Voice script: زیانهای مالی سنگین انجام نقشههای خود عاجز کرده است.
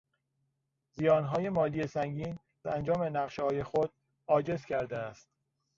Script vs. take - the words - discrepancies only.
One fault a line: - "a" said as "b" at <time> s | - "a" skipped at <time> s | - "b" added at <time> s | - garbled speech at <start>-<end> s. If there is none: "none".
none